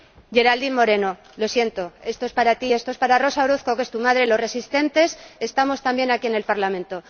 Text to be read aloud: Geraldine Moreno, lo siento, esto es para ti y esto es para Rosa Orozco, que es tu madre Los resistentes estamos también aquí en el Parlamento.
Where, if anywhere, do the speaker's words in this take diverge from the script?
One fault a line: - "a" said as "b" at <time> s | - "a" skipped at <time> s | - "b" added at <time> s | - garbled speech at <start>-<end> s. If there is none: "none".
- "y" skipped at 2.7 s